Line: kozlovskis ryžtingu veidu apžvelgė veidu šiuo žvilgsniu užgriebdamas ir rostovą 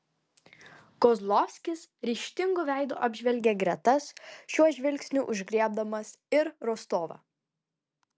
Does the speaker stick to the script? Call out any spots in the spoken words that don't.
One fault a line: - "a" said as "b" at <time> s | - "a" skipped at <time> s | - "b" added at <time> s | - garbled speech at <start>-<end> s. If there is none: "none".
- "veidu" said as "gretas" at 3.6 s